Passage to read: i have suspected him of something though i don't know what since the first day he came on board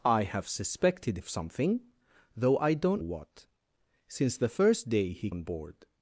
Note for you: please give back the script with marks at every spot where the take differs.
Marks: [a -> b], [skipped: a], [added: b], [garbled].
i have suspected [skipped: him] of something though i don't [skipped: know] what since the first day he [skipped: came] on board